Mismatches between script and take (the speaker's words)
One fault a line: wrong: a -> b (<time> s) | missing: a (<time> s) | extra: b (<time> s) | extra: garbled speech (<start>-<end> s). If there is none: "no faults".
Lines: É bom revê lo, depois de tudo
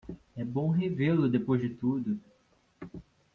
no faults